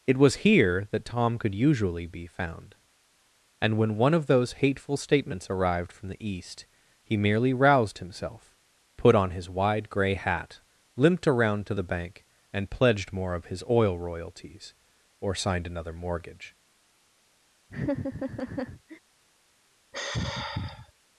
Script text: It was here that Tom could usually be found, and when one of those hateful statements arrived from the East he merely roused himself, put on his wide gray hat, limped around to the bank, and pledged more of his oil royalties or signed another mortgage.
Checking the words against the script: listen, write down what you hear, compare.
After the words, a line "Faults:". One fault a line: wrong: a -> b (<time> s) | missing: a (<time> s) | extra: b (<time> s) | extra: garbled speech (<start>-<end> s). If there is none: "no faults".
It was here that Tom could usually be found, and when one of those hateful statements arrived from the East he merely roused himself, put on his wide gray hat, limped around to the bank, and pledged more of his oil royalties or signed another mortgage.
Faults:
no faults